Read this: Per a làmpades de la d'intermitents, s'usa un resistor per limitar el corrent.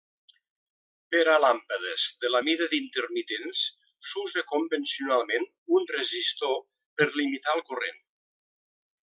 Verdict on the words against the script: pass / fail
fail